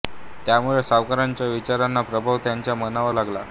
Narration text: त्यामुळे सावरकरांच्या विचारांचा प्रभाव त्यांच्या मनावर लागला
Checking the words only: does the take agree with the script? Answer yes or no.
yes